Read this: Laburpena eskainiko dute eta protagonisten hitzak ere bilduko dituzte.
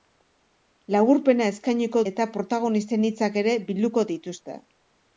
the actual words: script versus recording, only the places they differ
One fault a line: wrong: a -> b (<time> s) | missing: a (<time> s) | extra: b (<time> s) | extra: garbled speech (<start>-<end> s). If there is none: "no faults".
missing: dute (2.0 s)